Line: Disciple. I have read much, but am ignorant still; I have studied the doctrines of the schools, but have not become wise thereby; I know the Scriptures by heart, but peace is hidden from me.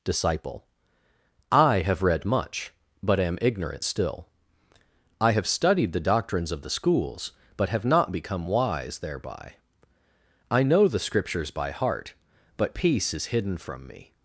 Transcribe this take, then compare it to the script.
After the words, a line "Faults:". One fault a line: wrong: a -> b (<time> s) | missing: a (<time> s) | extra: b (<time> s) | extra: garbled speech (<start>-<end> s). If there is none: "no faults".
Disciple. I have read much, but am ignorant still; I have studied the doctrines of the schools, but have not become wise thereby; I know the Scriptures by heart, but peace is hidden from me.
Faults:
no faults